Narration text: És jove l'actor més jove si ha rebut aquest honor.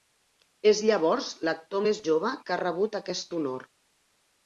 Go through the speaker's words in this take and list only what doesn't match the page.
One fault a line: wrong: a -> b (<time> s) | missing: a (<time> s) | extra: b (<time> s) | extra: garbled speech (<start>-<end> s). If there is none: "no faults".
wrong: jove -> llavors (0.9 s)
wrong: si -> que (2.4 s)